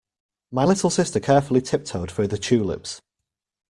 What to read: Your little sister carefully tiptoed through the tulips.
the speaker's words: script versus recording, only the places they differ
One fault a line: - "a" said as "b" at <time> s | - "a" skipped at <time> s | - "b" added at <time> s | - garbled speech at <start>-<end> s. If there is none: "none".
- "Your" said as "My" at 0.5 s